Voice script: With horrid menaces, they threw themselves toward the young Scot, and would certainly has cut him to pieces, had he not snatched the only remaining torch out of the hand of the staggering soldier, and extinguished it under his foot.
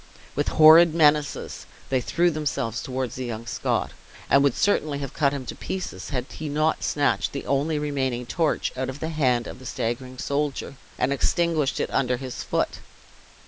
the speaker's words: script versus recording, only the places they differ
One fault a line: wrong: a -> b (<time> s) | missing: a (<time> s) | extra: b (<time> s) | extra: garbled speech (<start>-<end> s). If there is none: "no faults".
wrong: has -> have (5.0 s)